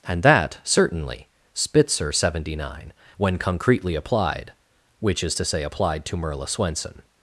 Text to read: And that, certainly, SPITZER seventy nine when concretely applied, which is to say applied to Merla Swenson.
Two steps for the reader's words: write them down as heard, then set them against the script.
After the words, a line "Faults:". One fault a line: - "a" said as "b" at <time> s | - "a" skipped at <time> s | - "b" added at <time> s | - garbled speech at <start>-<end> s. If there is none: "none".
And that, certainly, SPITZER seventy nine when concretely applied, which is to say applied to Merla Swenson.
Faults:
none